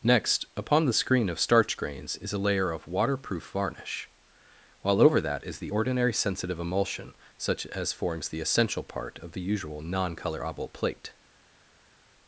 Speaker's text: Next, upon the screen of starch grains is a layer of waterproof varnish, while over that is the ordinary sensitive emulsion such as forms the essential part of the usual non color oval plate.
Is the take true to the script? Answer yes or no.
yes